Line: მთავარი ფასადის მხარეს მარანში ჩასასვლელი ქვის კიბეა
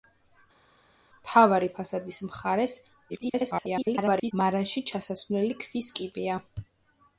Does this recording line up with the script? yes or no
no